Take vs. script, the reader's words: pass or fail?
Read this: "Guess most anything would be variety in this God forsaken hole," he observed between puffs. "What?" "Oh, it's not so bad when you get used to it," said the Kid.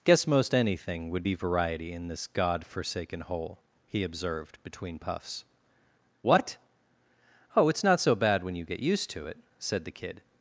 pass